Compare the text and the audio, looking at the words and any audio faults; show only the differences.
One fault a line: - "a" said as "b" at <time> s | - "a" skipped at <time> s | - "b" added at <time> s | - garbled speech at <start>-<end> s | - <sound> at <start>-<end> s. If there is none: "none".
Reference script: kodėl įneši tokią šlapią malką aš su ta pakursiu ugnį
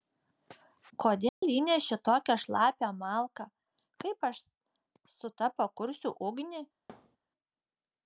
- dropout at 1.3-1.4 s
- "kaip" added at 4.0 s
- thud at 6.9-7.2 s